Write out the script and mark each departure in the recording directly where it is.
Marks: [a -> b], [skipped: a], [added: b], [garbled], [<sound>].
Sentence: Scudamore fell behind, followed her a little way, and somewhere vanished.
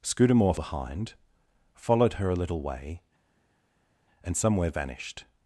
Scudamore [skipped: fell] behind, followed her a little way, and somewhere vanished.